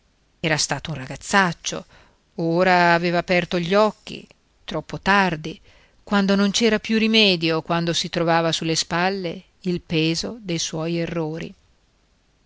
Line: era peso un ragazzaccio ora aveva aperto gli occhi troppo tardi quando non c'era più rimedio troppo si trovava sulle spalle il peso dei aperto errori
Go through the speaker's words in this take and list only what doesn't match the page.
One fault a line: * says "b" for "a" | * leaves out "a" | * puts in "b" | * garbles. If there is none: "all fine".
* says "stato" for "peso"
* says "quando" for "troppo"
* says "suoi" for "aperto"